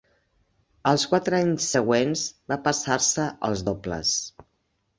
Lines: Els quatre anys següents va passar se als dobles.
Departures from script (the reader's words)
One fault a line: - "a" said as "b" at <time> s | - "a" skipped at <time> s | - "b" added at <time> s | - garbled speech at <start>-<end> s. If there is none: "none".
none